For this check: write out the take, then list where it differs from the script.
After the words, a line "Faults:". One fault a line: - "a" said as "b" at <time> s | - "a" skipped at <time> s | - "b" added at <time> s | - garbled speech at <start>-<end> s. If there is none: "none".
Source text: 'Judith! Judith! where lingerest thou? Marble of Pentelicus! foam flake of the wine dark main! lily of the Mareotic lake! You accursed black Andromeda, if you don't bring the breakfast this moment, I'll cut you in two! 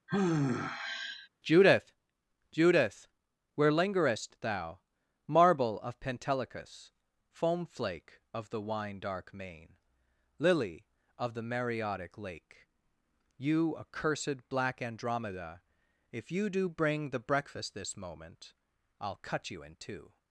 'Judith! Judith! where lingerest thou? Marble of Pentelicus! foam flake of the wine dark main! lily of the Mareotic lake! You accursed black Andromeda, if you do bring the breakfast this moment, I'll cut you in two!
Faults:
- "don't" said as "do" at 16.5 s